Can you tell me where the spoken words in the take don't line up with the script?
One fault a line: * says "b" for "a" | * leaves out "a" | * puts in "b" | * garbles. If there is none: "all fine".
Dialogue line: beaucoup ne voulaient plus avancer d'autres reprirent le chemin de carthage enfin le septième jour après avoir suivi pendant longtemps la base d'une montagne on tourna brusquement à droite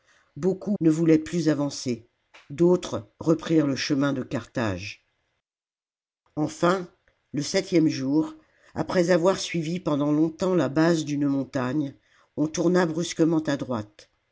all fine